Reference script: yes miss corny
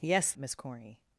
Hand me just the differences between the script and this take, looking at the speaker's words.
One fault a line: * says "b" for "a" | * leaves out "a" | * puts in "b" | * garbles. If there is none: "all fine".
all fine